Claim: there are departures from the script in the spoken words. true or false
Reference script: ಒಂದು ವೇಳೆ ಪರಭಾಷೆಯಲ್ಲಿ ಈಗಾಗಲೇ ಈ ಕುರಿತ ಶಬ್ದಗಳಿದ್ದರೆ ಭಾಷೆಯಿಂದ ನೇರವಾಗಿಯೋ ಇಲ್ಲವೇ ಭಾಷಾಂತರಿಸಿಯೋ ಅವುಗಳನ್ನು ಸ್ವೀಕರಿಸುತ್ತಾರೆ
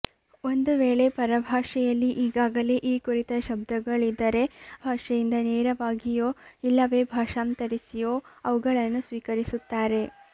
false